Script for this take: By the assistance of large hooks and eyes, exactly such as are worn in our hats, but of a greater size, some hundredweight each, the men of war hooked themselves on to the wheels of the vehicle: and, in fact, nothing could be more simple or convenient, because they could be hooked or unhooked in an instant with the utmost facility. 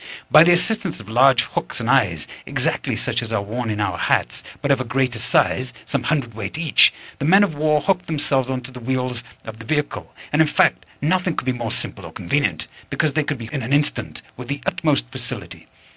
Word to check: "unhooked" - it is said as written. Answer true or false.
false